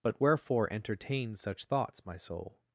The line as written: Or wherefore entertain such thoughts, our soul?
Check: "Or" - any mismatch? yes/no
yes